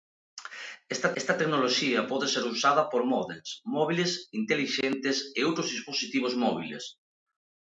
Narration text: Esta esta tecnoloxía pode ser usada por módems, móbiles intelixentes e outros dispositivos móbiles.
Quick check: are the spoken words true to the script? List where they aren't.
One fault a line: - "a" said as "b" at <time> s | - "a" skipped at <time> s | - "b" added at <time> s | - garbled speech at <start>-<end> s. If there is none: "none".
none